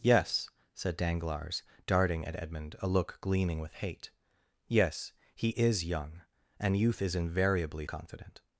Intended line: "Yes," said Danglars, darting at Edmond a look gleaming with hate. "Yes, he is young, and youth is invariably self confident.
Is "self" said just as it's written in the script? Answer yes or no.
no